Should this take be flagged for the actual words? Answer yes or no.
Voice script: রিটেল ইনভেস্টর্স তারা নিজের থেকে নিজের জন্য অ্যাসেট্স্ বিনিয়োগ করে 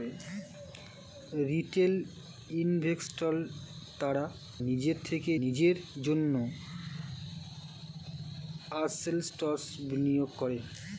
no